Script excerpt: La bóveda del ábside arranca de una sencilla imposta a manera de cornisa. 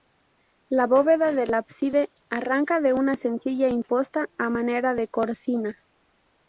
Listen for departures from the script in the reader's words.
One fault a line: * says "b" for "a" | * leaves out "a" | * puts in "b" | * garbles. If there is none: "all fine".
all fine